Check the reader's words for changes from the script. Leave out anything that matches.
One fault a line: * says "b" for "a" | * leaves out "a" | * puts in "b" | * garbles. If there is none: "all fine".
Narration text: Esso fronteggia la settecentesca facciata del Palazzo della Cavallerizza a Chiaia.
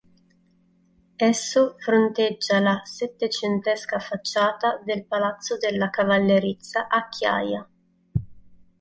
all fine